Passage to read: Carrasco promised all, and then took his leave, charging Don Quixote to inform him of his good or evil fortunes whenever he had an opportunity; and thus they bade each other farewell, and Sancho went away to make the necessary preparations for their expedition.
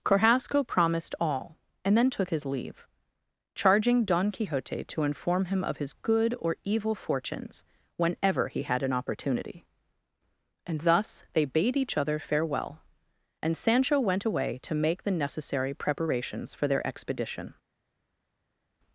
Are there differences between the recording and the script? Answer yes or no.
no